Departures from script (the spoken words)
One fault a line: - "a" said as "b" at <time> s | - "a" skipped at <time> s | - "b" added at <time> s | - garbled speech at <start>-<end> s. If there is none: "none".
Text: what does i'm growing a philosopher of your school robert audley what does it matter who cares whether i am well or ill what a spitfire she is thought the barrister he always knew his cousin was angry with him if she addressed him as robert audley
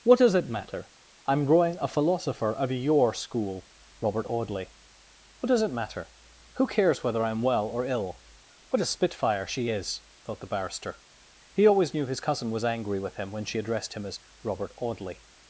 - "it matter" added at 0.3 s
- "if" said as "when" at 13.3 s